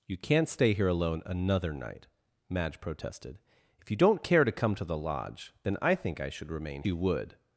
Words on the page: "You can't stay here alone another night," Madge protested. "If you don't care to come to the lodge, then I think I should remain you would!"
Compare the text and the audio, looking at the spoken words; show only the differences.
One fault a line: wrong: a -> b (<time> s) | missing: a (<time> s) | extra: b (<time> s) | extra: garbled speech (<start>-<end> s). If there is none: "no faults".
no faults